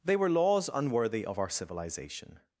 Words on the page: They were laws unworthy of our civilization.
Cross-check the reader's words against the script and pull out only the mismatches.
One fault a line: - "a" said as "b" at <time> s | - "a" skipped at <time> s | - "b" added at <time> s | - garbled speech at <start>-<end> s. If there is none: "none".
none